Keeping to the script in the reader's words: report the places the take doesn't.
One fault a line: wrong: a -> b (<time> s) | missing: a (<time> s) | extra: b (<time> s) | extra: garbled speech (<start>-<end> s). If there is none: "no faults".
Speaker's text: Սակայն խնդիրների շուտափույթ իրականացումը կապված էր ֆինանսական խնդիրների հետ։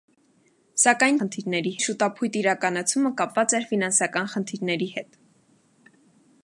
no faults